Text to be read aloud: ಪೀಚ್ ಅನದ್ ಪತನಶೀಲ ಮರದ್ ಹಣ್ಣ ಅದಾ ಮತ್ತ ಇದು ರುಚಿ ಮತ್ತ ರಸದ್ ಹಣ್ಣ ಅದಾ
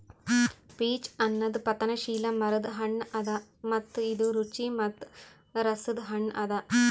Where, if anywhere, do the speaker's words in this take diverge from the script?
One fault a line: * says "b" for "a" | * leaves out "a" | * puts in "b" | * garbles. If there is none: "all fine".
all fine